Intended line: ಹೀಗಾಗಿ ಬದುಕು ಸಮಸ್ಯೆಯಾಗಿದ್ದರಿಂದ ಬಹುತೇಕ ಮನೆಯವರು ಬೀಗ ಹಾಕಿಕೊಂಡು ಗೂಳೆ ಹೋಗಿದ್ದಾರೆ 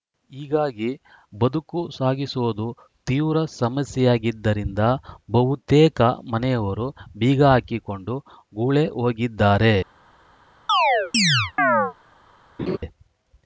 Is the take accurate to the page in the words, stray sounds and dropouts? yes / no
no